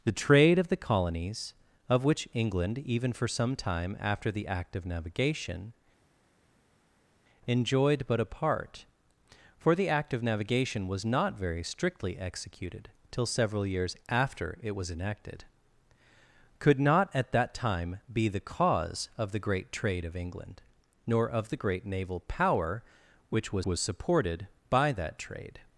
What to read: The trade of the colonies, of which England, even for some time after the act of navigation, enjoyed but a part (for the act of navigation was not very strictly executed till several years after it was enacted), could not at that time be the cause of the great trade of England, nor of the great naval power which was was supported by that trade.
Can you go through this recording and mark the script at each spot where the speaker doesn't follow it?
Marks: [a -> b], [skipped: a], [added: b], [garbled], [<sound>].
The trade of the colonies, of which England, even for some time after the act of navigation, enjoyed but a part (for the act of navigation was not very strictly executed till several years after it was enacted), could not at that time be the cause of the great trade of England, nor of the great naval power which was was supported by that trade.